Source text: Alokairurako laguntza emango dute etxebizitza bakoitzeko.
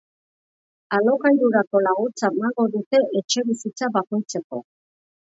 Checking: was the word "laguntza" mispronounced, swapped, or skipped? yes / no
no